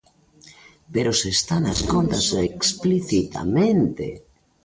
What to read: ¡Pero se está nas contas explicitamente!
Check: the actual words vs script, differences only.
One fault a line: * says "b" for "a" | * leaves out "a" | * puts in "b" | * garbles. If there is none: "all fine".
all fine